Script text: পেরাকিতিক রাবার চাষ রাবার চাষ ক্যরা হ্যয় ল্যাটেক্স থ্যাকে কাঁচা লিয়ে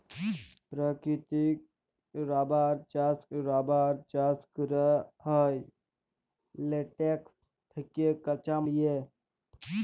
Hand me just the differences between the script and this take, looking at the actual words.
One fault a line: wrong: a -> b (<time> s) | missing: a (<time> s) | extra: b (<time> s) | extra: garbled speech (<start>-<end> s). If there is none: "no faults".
no faults